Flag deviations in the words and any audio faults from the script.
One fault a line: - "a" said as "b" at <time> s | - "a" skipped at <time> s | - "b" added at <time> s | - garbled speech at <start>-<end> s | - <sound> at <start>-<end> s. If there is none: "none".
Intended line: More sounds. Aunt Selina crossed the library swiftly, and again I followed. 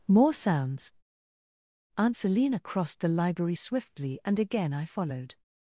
none